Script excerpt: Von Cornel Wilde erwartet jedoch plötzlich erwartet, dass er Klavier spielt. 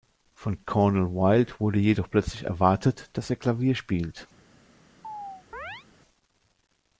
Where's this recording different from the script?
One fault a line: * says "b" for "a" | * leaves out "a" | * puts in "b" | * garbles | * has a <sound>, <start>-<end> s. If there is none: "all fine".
* says "wurde" for "erwartet"
* has a chirp, 5.0-5.9 s